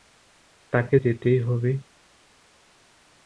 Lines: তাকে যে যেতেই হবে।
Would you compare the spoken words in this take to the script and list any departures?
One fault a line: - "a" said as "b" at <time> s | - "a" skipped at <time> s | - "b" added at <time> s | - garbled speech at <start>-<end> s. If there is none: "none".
- "যে" skipped at 0.9 s